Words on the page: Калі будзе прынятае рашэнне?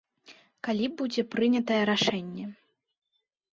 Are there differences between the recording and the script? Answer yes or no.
no